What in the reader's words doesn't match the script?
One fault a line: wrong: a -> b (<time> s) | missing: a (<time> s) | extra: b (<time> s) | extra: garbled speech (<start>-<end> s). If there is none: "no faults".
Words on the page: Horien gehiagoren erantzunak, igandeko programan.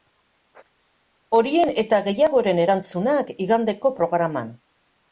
extra: eta (1.8 s)